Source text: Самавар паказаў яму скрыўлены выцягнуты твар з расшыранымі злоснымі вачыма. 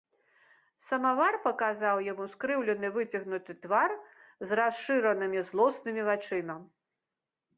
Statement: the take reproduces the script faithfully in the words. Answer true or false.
true